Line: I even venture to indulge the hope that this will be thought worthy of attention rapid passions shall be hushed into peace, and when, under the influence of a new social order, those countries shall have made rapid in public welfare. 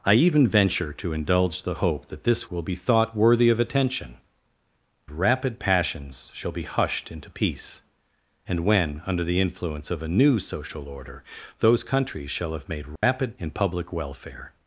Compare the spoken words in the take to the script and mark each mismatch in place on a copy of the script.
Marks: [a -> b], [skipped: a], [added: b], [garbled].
I even venture to indulge the hope that this will be thought worthy of attention rapid passions shall be hushed into peace, and when, under the influence of a new social order, those countries shall have made rapid in public welfare.